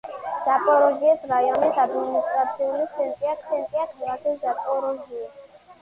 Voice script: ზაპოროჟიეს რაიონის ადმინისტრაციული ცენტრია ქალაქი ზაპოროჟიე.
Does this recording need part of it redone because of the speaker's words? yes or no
yes